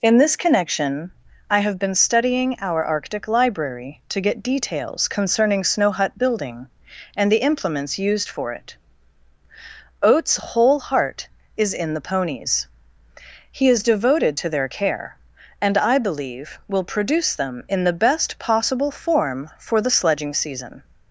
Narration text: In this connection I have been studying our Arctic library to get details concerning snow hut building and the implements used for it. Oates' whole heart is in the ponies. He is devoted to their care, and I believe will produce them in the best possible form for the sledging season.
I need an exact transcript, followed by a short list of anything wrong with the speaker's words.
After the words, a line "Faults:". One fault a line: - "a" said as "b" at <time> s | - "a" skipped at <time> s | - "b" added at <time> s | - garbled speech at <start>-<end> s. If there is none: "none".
In this connection I have been studying our Arctic library to get details concerning snow hut building and the implements used for it. Oates' whole heart is in the ponies. He is devoted to their care, and I believe will produce them in the best possible form for the sledging season.
Faults:
none